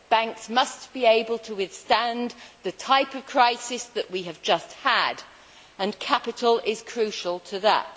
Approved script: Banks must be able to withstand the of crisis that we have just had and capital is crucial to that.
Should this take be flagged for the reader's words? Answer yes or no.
yes